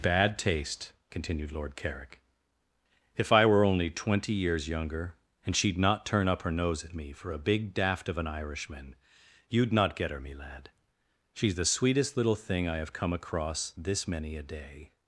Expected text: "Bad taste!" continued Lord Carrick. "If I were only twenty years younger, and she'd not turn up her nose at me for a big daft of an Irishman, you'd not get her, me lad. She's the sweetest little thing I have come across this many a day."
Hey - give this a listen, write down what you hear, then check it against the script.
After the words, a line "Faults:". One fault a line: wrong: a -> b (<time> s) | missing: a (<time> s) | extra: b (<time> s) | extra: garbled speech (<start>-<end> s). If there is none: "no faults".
"Bad taste!" continued Lord Carrick. "If I were only twenty years younger, and she'd not turn up her nose at me for a big daft of an Irishman, you'd not get her, me lad. She's the sweetest little thing I have come across this many a day."
Faults:
no faults